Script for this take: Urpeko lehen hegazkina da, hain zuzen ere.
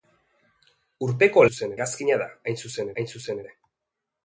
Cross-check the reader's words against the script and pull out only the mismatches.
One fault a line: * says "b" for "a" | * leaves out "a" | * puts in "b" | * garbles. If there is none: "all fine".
* says "zuzen" for "lehen"
* puts in "hain zuzen"